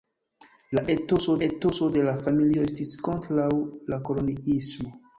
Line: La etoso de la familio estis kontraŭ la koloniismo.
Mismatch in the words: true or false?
true